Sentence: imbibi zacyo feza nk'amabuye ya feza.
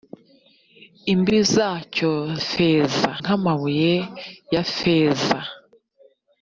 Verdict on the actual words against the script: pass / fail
pass